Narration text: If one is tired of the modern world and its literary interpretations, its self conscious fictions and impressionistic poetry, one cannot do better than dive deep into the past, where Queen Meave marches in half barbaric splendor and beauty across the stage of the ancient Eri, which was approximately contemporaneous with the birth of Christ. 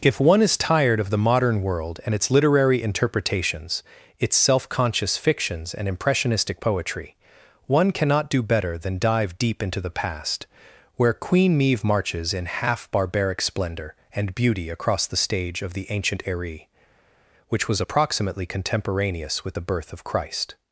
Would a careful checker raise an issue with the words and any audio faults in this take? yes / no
no